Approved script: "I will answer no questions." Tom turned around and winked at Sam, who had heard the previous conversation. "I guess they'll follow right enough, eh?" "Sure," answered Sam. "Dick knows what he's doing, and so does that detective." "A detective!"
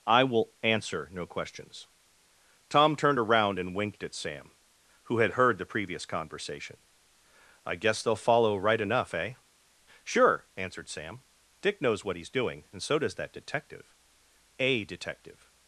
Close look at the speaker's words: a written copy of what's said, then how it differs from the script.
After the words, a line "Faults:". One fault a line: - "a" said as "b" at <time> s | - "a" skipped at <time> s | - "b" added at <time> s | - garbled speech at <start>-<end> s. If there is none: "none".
"I will answer no questions." Tom turned around and winked at Sam, who had heard the previous conversation. "I guess they'll follow right enough, eh?" "Sure," answered Sam. "Dick knows what he's doing, and so does that detective." "A detective!"
Faults:
none